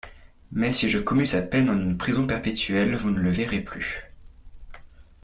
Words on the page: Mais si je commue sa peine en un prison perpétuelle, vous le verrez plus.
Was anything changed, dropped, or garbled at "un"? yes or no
yes